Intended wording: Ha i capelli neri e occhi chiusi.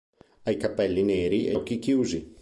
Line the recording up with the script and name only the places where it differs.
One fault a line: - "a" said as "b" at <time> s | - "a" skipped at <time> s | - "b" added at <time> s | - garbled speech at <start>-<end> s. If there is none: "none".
none